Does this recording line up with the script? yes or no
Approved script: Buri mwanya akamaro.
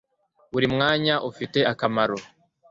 no